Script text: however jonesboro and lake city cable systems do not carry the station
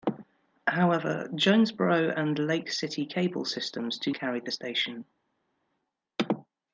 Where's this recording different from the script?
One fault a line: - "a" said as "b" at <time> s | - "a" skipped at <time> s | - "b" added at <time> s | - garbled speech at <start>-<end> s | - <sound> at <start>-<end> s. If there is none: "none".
- "not" skipped at 4.1 s